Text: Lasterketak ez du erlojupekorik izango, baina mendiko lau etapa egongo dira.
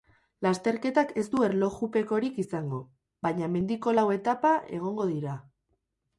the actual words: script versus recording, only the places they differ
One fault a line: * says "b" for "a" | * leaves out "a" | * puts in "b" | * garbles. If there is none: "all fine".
all fine